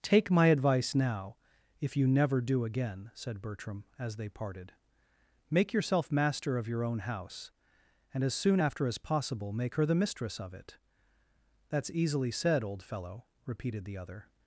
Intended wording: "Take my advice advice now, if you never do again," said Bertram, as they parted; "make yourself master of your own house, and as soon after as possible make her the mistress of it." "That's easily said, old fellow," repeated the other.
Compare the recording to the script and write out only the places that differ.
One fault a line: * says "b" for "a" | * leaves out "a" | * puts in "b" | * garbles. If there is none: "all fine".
* leaves out "advice"